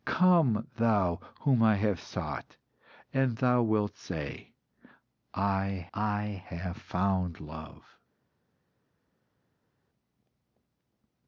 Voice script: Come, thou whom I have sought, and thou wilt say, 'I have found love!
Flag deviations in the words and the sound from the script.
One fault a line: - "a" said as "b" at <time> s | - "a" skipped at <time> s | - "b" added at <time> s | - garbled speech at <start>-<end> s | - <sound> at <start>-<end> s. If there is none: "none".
- "I" added at 5.9 s